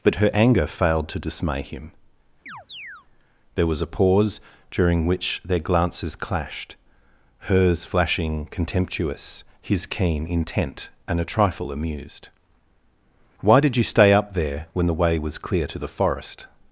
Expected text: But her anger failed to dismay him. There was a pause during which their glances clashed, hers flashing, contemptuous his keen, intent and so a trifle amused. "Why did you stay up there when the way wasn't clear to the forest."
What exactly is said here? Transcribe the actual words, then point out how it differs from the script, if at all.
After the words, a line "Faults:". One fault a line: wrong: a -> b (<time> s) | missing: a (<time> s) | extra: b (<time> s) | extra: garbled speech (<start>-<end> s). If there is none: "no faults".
But her anger failed to dismay him. There was a pause during which their glances clashed, hers flashing, contemptuous his keen, intent and a trifle amused. "Why did you stay up there when the way was clear to the forest."
Faults:
missing: so (11.2 s)
wrong: wasn't -> was (15.2 s)